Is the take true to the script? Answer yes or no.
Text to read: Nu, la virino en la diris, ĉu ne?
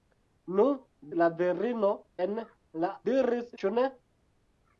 yes